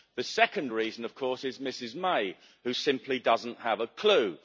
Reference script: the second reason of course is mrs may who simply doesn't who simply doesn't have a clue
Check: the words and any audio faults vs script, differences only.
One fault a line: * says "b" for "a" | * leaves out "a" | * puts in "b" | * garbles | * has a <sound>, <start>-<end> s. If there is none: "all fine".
* leaves out "who simply doesn't"